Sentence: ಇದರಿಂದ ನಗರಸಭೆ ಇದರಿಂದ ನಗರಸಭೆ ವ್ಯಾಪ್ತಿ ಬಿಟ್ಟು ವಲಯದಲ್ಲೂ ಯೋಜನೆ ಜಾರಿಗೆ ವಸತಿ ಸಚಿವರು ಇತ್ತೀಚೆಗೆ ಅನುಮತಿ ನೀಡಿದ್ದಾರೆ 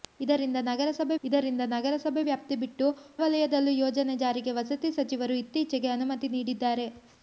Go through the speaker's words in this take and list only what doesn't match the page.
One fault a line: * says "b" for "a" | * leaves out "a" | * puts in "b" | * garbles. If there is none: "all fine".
all fine